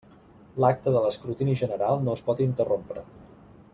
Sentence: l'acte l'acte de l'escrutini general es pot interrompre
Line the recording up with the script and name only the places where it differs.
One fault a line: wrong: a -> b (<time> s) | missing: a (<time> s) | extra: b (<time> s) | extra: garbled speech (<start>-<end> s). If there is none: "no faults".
missing: l'acte (0.9 s)
extra: no (2.1 s)